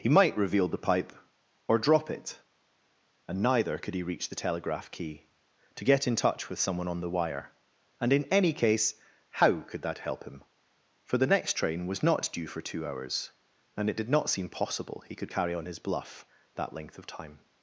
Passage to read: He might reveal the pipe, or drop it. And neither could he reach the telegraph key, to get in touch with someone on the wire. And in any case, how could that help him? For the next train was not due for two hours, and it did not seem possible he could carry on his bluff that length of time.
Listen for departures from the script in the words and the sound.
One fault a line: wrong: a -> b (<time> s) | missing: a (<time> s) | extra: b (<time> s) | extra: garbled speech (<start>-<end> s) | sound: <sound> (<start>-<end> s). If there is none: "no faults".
no faults